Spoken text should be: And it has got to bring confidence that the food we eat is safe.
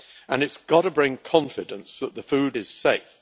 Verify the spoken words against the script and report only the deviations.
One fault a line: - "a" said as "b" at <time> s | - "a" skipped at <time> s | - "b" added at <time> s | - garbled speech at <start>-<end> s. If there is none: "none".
- "we eat" skipped at 2.6 s